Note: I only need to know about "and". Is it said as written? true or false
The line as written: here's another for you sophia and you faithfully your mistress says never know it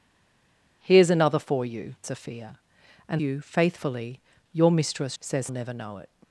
true